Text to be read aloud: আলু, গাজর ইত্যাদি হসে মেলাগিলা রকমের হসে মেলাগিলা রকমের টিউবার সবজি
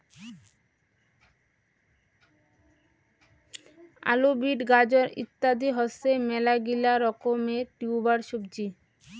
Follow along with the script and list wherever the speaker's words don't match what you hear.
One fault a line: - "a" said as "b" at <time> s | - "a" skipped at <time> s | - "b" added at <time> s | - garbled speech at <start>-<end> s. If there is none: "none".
- "বিট" added at 4.4 s
- "হসে মেলাগিলা রকমের" skipped at 7.7 s